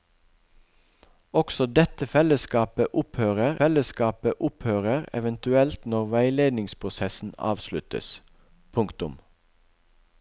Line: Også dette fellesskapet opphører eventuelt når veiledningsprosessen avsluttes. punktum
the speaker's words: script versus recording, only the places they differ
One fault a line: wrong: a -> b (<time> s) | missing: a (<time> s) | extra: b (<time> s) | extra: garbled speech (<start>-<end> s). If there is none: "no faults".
extra: fellesskapet opphører (3.6 s)